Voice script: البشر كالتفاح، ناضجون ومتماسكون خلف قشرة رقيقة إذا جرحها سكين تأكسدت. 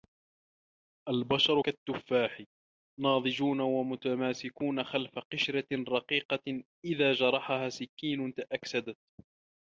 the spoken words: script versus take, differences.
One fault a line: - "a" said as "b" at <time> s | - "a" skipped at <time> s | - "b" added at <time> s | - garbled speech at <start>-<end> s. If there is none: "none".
none